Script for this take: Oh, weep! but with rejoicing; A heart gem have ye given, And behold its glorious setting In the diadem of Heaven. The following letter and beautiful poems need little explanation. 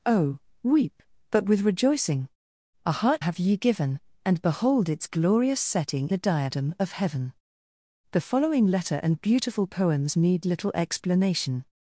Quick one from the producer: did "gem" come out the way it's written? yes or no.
no